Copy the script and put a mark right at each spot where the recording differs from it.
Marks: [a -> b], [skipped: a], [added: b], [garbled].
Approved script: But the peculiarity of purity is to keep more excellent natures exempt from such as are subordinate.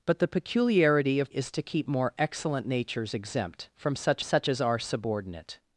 But the peculiarity of [skipped: purity] is to keep more excellent natures exempt from such [added: such] as are subordinate.